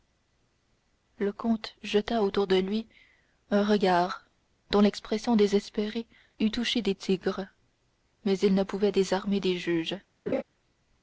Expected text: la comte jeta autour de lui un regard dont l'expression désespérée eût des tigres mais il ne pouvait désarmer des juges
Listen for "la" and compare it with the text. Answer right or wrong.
wrong